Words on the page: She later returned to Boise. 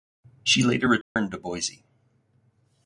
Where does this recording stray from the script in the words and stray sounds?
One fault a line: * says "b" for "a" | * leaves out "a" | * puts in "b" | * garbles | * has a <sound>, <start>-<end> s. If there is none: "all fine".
* has a dropout, 1.0-1.2 s